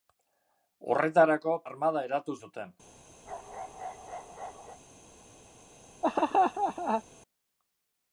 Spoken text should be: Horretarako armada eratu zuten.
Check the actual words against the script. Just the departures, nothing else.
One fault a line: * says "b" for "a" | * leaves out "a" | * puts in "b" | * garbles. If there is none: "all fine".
all fine